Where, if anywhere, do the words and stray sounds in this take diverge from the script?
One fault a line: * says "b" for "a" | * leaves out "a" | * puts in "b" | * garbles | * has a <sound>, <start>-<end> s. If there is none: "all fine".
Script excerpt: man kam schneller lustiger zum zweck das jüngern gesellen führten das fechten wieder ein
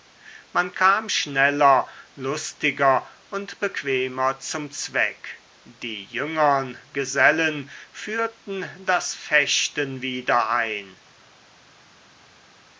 * puts in "und bequemer"
* says "die" for "das"